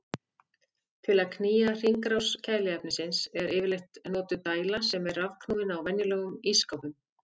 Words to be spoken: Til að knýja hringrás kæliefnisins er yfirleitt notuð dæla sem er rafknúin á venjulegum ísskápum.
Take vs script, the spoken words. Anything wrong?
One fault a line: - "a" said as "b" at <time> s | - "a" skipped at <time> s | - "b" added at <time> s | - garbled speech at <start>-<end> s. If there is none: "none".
none